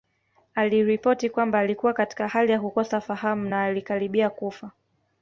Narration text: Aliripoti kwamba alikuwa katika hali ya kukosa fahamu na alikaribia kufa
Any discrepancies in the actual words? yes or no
no